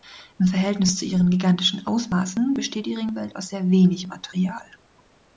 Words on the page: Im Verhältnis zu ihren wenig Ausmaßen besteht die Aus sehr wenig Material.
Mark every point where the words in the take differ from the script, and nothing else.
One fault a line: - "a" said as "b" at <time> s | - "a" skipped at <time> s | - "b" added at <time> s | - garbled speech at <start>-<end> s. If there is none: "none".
- "wenig" said as "gigantischen" at 1.3 s
- "Ringwelt" added at 3.0 s